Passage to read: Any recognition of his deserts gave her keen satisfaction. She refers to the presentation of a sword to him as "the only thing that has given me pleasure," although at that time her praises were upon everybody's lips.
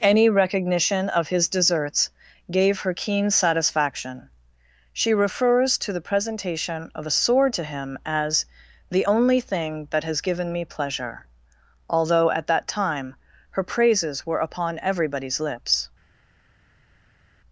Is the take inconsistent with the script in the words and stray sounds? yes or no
no